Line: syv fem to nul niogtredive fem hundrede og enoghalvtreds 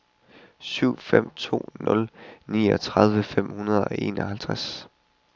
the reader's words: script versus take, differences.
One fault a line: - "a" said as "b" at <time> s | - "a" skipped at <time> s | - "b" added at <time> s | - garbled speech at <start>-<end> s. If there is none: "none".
none